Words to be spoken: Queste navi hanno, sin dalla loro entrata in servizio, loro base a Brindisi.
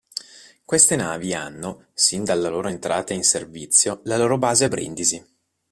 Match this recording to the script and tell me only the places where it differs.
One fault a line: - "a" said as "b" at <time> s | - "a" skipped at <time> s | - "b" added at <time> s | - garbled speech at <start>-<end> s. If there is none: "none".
- "la" added at 4.0 s